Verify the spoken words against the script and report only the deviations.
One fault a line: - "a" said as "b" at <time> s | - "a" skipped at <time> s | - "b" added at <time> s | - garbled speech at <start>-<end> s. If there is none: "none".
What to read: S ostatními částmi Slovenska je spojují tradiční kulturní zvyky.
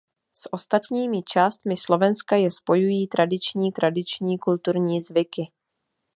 - "tradiční" added at 3.7 s